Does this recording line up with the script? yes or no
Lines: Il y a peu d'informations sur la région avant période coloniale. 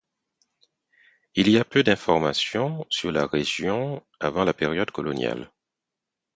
no